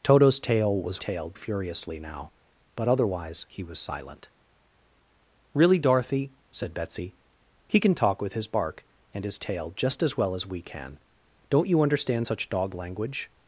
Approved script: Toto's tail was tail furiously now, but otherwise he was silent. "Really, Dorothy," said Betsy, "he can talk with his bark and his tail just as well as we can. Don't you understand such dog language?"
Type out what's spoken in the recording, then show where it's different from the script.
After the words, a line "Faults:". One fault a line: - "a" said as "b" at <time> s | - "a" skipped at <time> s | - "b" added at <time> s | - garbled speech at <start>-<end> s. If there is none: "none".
Toto's tail was tail furiously now, but otherwise he was silent. "Really, Dorothy," said Betsy, "he can talk with his bark and his tail just as well as we can. Don't you understand such dog language?"
Faults:
none